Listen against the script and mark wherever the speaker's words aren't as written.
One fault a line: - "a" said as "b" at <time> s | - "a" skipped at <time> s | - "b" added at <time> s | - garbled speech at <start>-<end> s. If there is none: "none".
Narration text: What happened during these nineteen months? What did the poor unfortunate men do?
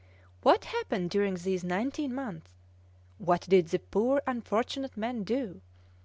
none